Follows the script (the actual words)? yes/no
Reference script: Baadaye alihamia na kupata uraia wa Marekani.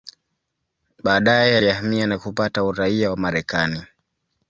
yes